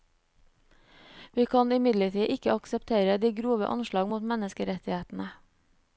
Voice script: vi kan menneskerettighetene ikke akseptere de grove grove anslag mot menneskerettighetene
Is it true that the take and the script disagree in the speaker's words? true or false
true